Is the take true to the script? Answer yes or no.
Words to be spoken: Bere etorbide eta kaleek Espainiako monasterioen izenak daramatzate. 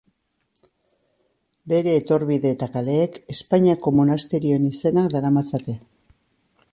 yes